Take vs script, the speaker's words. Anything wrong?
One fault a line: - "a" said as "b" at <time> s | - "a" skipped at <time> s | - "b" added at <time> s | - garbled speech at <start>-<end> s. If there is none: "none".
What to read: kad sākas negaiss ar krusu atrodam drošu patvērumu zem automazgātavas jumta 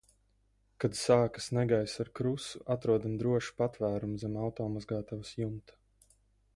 none